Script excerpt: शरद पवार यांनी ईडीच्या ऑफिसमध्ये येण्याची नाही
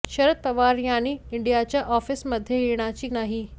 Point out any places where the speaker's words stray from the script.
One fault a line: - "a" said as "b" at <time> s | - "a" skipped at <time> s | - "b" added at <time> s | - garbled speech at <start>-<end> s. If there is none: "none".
none